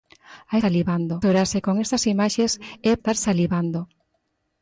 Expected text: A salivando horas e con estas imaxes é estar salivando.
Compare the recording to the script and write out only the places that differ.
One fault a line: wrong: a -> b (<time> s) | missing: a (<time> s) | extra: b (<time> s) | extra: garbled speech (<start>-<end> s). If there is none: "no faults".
no faults